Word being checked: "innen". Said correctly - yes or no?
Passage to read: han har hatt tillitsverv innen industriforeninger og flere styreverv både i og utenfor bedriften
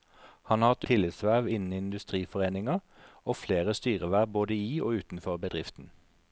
yes